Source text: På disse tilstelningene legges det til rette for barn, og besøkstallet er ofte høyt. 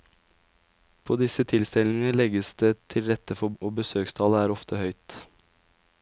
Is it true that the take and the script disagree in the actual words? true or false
true